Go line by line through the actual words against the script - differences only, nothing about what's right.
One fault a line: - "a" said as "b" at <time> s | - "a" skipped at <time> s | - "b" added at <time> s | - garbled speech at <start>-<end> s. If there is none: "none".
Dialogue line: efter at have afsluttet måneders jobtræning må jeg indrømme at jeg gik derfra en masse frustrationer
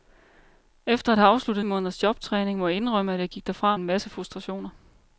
none